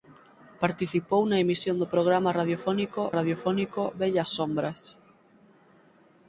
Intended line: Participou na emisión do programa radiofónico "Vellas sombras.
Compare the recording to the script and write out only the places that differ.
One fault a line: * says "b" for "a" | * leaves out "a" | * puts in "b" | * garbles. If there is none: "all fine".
* puts in "radiofónico"